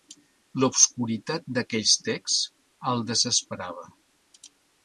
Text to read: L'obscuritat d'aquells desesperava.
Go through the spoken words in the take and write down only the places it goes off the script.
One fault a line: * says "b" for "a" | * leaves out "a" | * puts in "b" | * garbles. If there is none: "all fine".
* puts in "texts el"